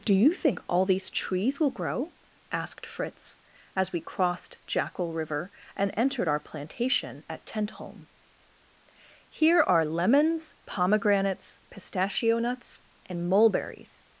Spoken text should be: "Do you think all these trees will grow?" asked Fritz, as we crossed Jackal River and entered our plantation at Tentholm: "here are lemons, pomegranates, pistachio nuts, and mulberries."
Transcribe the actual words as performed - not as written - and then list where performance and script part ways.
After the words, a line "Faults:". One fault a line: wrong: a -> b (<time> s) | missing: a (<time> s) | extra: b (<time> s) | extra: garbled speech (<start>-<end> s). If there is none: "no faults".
"Do you think all these trees will grow?" asked Fritz, as we crossed Jackal River and entered our plantation at Tentholm: "here are lemons, pomegranates, pistachio nuts, and mulberries."
Faults:
no faults